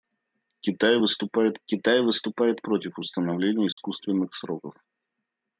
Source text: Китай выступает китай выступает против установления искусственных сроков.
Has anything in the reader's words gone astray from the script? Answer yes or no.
no